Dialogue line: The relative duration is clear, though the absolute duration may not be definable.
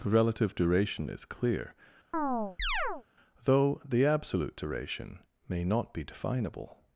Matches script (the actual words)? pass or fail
pass